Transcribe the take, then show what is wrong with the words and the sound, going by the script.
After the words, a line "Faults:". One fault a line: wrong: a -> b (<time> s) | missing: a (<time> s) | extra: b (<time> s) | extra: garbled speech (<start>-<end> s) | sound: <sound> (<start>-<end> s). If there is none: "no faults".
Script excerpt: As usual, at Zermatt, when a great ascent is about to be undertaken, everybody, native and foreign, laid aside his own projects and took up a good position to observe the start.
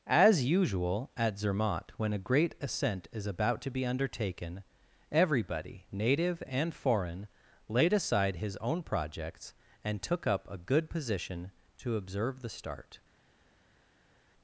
As usual, at Zermatt, when a great ascent is about to be undertaken, everybody, native and foreign, laid aside his own projects and took up a good position to observe the start.
Faults:
no faults